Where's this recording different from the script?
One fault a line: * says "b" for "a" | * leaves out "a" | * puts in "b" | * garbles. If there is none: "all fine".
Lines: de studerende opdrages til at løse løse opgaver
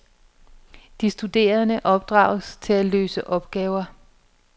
* leaves out "løse"